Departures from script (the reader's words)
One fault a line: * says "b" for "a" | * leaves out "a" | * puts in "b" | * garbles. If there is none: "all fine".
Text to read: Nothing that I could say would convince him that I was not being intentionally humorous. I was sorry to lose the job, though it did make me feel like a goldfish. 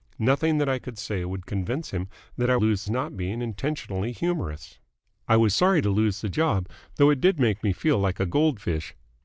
* says "lose" for "was"